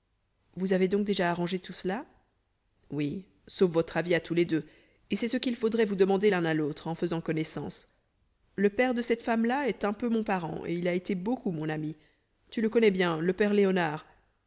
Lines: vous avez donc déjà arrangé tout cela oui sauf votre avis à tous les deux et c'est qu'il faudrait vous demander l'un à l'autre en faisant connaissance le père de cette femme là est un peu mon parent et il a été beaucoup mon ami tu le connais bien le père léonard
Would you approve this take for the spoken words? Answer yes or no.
no